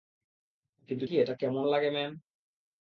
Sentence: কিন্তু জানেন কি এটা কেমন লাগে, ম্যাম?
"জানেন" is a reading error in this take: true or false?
true